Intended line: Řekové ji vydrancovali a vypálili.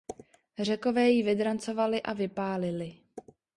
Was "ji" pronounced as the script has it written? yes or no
yes